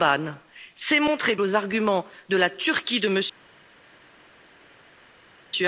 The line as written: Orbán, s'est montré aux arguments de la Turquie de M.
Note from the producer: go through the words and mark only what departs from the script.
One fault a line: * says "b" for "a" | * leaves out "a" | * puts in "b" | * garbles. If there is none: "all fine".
all fine